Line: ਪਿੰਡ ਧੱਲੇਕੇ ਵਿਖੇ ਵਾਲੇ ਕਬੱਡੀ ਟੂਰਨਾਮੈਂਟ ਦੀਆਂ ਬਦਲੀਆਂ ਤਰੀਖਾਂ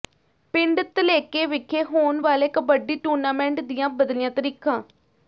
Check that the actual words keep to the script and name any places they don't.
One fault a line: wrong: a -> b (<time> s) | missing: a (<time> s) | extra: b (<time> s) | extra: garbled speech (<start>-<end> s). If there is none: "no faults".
extra: ਹੋਣ (1.8 s)